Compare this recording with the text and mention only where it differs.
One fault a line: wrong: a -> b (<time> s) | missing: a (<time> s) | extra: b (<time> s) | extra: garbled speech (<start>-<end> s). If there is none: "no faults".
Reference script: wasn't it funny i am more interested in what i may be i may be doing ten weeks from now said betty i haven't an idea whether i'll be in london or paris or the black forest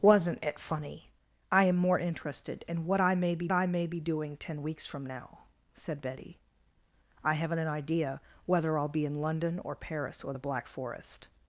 no faults